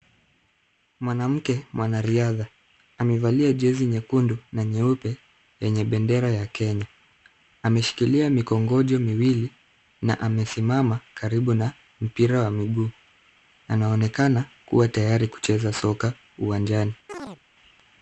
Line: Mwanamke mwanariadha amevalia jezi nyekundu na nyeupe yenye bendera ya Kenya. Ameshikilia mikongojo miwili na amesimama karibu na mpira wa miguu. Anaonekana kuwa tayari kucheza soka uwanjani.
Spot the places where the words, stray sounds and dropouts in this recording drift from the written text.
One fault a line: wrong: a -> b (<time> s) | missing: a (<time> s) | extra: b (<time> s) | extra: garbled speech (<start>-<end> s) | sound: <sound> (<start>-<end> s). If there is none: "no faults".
sound: chirp (17.1-17.4 s)